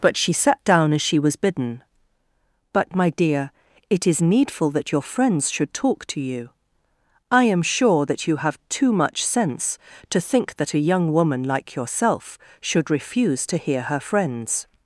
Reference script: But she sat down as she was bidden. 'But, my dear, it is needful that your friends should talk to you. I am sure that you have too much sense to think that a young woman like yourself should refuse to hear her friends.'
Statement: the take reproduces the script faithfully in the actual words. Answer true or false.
true